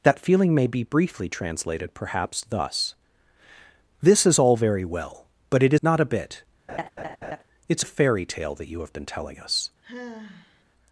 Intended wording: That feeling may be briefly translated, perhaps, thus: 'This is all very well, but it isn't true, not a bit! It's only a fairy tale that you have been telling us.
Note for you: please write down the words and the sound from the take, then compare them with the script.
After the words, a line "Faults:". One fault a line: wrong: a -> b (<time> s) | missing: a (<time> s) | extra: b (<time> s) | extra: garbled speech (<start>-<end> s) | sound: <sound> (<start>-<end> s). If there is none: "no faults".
That feeling may be briefly translated, perhaps, thus: 'This is all very well, but it not a bit! It's a fairy tale that you have been telling us.
Faults:
missing: isn't true (5.8 s)
sound: laugh (6.7-7.4 s)
missing: only (7.8 s)
sound: sigh (9.8-10.6 s)